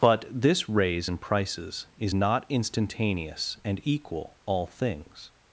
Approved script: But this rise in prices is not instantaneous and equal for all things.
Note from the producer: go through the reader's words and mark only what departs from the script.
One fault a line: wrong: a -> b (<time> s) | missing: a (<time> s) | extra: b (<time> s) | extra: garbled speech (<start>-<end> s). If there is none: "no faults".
wrong: rise -> raise (0.7 s)
missing: for (4.4 s)